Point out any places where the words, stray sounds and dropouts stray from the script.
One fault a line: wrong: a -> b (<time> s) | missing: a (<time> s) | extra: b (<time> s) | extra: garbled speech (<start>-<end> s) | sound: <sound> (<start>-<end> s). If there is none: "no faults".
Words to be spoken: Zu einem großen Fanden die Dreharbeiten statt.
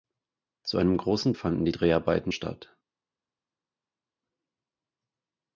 no faults